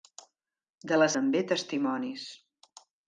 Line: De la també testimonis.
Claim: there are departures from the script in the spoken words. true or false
false